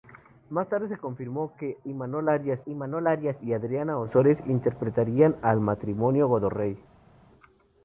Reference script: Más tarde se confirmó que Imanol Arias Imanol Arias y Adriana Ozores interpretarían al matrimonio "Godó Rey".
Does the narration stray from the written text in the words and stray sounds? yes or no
no